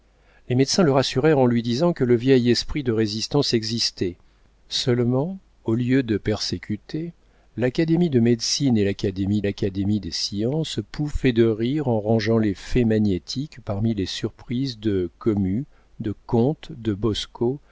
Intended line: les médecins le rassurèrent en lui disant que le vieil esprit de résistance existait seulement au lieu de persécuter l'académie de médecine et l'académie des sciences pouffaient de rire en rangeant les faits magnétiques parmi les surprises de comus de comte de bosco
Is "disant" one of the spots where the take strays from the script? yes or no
no